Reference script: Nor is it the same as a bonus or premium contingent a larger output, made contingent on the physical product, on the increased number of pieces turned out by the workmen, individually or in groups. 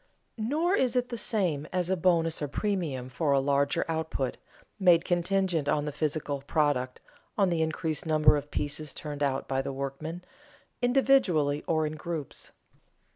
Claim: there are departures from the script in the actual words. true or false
true